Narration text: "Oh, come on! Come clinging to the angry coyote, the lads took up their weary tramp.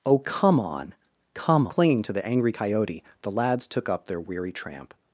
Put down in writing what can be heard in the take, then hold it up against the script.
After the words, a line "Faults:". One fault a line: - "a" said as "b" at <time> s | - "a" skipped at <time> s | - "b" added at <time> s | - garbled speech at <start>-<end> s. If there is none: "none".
"Oh, come on! Come clinging to the angry coyote, the lads took up their weary tramp.
Faults:
none